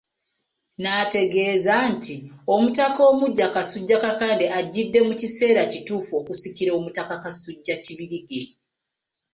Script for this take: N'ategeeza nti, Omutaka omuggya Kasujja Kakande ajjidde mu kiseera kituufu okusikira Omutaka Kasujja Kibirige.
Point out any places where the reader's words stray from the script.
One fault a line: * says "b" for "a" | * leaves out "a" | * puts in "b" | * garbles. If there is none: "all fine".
all fine